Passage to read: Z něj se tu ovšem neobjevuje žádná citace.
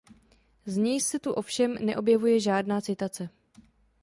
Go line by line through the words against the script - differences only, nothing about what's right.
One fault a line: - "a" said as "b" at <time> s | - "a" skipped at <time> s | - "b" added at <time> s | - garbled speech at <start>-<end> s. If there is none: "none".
none